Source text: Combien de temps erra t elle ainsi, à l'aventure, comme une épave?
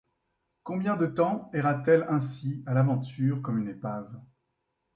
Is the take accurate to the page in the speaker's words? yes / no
yes